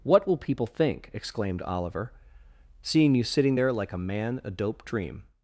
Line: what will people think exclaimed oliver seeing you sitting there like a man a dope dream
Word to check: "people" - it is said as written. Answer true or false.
true